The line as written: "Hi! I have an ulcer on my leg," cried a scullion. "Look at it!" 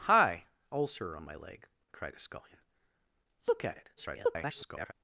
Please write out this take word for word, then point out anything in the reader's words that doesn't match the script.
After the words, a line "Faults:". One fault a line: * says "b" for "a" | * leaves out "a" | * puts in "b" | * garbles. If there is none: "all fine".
"Hi! ulcer on my leg," cried a scullion. "Look at it!" [garbled]
Faults:
* leaves out "I have an"
* garbles